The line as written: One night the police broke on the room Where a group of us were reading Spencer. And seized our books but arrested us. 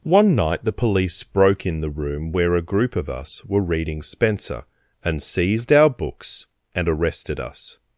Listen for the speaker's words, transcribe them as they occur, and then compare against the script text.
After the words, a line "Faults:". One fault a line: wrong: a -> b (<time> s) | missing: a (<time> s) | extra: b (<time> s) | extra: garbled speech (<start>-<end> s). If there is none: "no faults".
One night the police broke in the room Where a group of us were reading Spencer. And seized our books and arrested us.
Faults:
wrong: on -> in (1.6 s)
wrong: but -> and (6.7 s)